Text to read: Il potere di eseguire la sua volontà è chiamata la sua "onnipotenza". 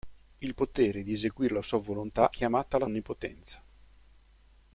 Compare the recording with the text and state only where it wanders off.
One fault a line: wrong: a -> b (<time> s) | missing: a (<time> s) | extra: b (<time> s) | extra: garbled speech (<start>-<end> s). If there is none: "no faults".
missing: è (2.3 s)
missing: sua (2.9 s)